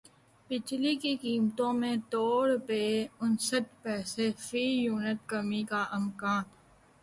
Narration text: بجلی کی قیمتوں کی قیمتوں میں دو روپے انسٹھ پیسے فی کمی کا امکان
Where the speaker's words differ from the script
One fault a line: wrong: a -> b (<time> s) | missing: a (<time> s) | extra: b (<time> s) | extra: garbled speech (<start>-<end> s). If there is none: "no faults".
missing: کی قیمتوں (1.7 s)
extra: یونٹ (4.8 s)